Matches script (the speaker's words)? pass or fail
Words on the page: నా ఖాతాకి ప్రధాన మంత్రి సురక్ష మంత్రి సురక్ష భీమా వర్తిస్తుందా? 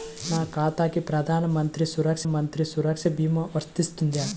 pass